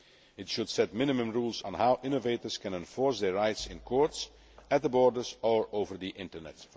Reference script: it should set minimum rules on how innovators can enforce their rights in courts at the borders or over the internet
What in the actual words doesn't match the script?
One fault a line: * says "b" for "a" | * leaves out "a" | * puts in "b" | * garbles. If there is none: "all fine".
all fine